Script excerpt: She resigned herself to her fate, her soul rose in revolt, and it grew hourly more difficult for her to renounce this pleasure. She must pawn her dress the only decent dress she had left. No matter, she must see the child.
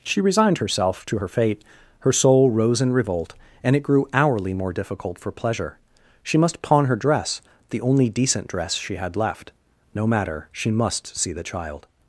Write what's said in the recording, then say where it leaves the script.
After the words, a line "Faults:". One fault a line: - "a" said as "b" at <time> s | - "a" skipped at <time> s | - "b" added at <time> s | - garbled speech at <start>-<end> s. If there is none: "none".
She resigned herself to her fate, her soul rose in revolt, and it grew hourly more difficult for pleasure. She must pawn her dress the only decent dress she had left. No matter, she must see the child.
Faults:
- "her to renounce this" skipped at 5.3 s